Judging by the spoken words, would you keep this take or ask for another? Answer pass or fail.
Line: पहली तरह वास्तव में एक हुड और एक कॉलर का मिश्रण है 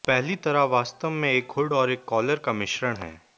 pass